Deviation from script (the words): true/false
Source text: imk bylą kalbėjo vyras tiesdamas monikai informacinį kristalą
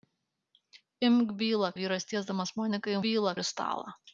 true